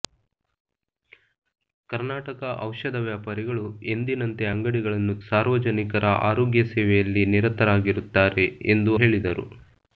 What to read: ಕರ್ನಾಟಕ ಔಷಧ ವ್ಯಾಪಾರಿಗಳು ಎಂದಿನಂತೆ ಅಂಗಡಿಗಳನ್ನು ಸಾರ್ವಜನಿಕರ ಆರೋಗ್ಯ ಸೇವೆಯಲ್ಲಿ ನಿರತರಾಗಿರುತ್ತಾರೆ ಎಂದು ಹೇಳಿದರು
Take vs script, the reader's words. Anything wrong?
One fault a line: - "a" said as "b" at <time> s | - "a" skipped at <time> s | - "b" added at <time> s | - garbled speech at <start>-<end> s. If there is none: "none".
none